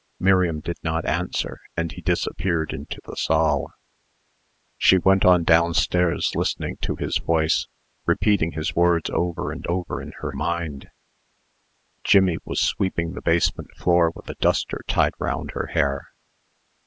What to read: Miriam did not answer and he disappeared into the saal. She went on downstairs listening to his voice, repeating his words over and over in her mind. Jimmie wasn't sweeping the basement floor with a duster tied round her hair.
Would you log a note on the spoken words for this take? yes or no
yes